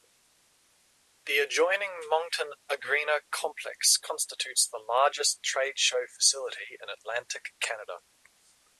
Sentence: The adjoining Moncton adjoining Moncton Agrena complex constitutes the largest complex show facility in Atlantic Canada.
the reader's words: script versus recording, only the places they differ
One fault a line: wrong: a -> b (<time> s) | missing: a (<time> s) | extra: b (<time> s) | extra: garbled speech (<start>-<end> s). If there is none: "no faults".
missing: adjoining Moncton (2.5 s)
wrong: complex -> trade (5.4 s)